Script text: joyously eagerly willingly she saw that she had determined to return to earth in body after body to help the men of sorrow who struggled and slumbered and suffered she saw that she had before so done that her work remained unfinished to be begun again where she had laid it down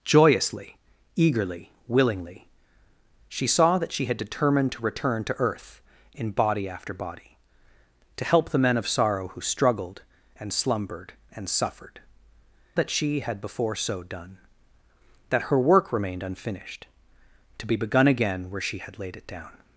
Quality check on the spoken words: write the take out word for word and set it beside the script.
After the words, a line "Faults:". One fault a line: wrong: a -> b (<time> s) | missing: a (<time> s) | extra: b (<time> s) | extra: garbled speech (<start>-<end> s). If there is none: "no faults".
joyously eagerly willingly she saw that she had determined to return to earth in body after body to help the men of sorrow who struggled and slumbered and suffered that she had before so done that her work remained unfinished to be begun again where she had laid it down
Faults:
missing: she saw (12.0 s)